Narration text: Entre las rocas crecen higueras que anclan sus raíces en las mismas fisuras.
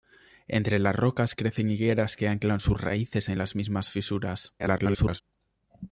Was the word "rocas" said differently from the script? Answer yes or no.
no